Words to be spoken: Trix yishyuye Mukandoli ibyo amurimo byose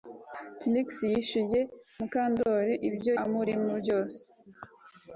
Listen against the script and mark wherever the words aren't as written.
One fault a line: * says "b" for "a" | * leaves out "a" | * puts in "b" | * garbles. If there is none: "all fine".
all fine